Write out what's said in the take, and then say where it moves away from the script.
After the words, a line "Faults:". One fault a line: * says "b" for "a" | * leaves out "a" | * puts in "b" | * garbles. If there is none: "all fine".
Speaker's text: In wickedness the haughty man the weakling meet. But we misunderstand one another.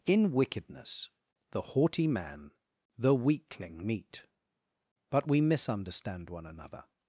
In wickedness the haughty man the weakling meet. But we misunderstand one another.
Faults:
all fine